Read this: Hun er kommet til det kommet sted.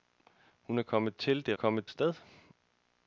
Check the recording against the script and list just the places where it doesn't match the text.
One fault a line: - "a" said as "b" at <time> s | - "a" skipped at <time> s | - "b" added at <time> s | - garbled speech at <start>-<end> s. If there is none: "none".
none